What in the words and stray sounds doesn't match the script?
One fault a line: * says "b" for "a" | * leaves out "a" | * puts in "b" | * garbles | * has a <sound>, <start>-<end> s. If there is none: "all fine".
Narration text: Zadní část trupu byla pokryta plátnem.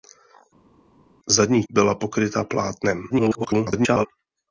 * leaves out "část trupu"
* garbles